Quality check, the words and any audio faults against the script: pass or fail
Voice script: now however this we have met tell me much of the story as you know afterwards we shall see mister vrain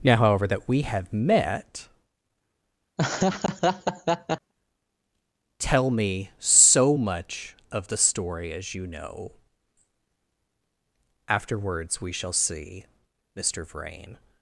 fail